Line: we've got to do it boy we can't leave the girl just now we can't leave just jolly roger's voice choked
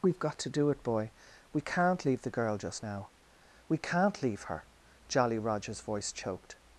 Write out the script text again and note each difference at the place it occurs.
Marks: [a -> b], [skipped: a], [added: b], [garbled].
we've got to do it boy we can't leave the girl just now we can't leave [just -> her] jolly roger's voice choked